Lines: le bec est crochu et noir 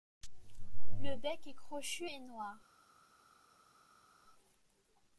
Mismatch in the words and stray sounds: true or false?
false